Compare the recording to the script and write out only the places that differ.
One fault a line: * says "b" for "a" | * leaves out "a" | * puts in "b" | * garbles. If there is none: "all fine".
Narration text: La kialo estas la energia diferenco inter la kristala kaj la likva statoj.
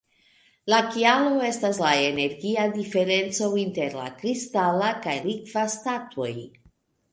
* leaves out "la"